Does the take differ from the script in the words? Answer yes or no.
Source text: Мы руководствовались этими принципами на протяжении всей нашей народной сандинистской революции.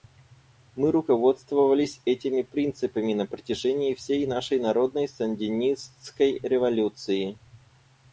no